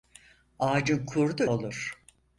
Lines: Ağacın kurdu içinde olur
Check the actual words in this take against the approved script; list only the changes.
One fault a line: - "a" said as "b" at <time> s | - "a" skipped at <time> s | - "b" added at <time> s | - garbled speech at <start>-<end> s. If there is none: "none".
- "içinde" skipped at 1.4 s